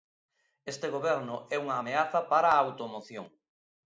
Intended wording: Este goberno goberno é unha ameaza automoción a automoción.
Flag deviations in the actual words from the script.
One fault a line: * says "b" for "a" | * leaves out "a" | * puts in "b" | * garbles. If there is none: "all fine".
* leaves out "goberno"
* says "para" for "automoción"